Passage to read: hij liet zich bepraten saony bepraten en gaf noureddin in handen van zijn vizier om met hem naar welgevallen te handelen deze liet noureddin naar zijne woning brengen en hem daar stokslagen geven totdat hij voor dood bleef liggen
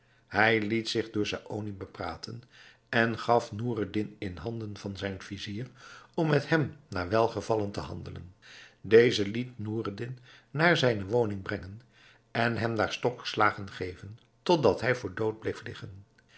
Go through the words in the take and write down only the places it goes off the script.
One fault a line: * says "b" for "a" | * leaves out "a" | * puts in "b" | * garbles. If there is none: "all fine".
* says "door" for "bepraten"